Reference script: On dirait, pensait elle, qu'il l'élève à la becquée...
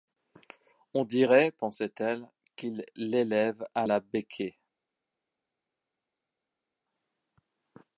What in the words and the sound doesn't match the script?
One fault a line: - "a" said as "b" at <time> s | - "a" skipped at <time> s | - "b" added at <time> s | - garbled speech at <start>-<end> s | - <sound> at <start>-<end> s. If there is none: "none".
none